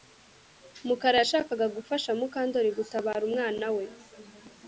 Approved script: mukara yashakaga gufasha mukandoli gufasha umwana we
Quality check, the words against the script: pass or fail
fail